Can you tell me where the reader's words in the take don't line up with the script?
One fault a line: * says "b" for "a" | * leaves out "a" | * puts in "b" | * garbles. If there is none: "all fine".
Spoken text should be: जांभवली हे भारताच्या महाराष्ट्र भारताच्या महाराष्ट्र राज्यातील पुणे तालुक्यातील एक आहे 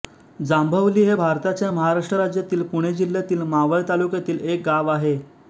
* says "राज्यातील पुणे जिल्ह्यातील मावळ" for "भारताच्या महाराष्ट्र राज्यातील पुणे"
* puts in "गाव"